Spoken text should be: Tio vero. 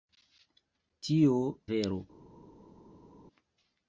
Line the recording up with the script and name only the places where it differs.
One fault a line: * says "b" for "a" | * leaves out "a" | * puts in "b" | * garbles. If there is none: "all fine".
all fine